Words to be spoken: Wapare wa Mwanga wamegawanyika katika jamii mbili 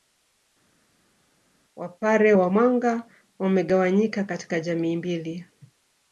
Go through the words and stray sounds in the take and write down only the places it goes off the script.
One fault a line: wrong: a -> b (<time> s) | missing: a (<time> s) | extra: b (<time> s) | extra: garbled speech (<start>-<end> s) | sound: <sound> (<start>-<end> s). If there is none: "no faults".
no faults